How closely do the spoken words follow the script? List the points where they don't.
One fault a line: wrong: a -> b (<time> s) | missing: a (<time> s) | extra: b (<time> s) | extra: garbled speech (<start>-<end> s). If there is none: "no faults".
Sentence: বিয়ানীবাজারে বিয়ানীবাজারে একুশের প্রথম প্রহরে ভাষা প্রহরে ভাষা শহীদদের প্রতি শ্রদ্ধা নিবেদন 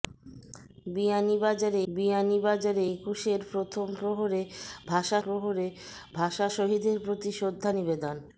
no faults